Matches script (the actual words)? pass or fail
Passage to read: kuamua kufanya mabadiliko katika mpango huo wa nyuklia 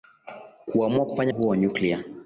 fail